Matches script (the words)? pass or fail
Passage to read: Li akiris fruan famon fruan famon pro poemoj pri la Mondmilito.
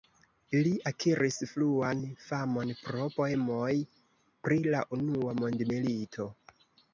fail